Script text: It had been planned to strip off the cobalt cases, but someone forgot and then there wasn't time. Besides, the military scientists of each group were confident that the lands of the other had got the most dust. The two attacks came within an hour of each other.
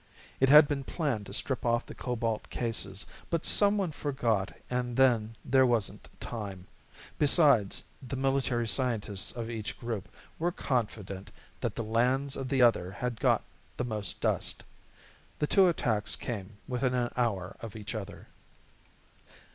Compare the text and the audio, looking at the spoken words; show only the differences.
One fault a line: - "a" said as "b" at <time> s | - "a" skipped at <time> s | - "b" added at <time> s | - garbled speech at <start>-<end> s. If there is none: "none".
none